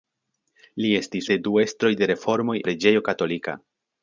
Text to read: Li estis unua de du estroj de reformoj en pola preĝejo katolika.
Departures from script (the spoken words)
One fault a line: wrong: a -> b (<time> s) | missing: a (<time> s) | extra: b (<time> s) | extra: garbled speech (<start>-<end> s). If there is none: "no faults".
missing: unua (1.3 s)
missing: en pola (2.6 s)